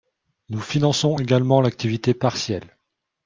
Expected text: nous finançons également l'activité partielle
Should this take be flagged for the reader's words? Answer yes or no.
no